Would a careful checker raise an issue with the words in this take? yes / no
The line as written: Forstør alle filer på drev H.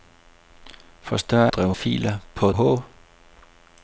yes